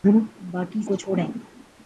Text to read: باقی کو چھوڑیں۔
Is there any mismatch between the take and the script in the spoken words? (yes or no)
no